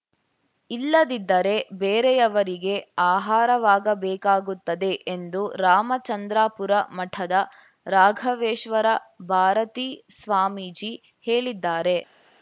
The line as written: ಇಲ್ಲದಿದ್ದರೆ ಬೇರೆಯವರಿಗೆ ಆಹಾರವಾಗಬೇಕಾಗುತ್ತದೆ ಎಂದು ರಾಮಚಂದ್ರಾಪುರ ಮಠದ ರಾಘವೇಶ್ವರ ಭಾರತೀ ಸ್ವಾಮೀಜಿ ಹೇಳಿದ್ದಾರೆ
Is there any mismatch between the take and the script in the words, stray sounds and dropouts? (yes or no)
no